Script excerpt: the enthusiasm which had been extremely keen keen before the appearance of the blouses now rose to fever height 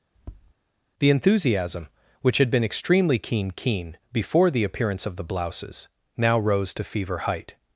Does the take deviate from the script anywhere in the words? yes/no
no